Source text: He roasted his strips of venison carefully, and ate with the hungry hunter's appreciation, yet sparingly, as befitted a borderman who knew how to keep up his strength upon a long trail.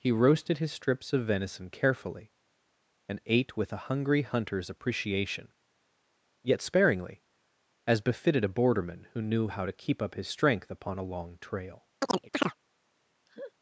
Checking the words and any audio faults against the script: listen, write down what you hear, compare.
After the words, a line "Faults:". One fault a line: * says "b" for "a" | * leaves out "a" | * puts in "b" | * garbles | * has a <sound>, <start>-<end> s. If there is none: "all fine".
He roasted his strips of venison carefully, and ate with a hungry hunter's appreciation, yet sparingly, as befitted a borderman who knew how to keep up his strength upon a long trail.
Faults:
* says "a" for "the"
* has a chirp, 12.0-12.6 s
* has a laugh, 13.3-13.5 s